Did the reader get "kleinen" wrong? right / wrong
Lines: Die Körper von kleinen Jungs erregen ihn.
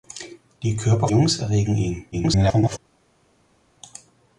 wrong